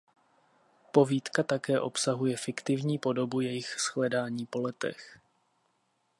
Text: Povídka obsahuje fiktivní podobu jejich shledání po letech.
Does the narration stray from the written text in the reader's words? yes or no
yes